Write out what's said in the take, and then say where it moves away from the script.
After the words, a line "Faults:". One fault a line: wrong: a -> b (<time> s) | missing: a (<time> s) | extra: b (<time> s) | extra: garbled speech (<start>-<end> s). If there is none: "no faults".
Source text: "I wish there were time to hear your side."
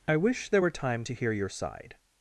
"I wish there were time to hear your side."
Faults:
no faults